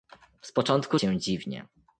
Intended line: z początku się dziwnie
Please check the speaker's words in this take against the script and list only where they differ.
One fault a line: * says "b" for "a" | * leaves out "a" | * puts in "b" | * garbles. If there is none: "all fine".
all fine